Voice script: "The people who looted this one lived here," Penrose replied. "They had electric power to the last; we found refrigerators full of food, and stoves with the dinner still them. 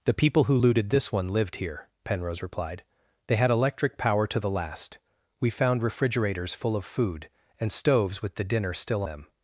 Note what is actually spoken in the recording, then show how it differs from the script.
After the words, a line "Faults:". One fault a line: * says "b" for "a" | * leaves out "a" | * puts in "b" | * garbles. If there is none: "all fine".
"The people who looted this one lived here," Penrose replied. "They had electric power to the last; we found refrigerators full of food, and stoves with the dinner still them.
Faults:
all fine